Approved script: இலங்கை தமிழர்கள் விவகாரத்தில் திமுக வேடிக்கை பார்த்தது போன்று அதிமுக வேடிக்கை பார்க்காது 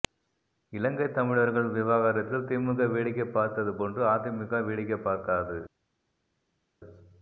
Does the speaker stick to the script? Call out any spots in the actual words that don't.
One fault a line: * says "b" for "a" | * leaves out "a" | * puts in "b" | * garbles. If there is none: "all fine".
all fine